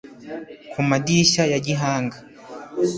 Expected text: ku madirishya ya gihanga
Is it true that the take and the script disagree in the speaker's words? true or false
false